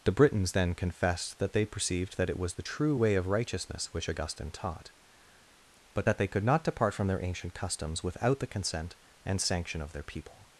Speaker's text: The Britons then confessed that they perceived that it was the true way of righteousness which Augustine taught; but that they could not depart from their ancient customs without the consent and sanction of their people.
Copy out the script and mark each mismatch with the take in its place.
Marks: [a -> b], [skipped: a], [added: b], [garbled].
The Britons then confessed that they perceived that it was the true way of righteousness which Augustine taught; but that they could not depart from their ancient customs without the consent and sanction of their people.